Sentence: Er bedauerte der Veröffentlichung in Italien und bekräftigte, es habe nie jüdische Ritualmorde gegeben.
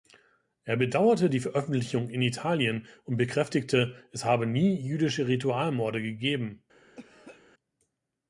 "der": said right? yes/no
no